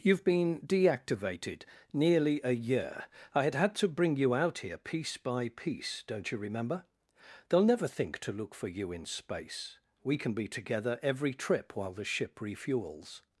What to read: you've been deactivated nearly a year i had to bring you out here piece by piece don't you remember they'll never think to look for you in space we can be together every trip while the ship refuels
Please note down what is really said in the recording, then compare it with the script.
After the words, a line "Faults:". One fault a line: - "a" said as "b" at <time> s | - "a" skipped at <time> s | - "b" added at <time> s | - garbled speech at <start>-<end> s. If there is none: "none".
you've been deactivated nearly a year i had had to bring you out here piece by piece don't you remember they'll never think to look for you in space we can be together every trip while the ship refuels
Faults:
- "had" added at 3.5 s